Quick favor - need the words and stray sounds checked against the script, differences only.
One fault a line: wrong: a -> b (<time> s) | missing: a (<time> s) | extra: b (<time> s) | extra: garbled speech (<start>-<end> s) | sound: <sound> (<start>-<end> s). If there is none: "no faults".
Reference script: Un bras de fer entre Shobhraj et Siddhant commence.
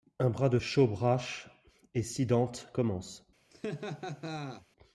missing: fer entre (0.6 s)
sound: laugh (3.5-4.7 s)